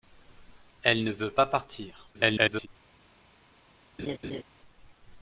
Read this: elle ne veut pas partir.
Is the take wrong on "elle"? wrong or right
right